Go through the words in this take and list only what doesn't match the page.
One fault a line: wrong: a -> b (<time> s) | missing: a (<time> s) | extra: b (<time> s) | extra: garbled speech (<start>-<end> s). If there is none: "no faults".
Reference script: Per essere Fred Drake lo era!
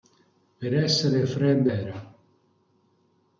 missing: Drake lo (1.7 s)